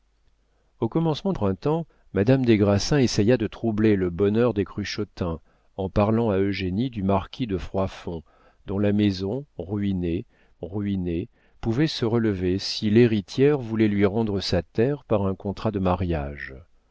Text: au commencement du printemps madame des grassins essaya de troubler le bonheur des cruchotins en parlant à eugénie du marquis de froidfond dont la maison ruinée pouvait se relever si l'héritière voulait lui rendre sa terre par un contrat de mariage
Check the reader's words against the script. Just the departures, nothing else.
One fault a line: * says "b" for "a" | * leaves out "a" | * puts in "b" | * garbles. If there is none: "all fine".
* leaves out "du"
* puts in "ruinée"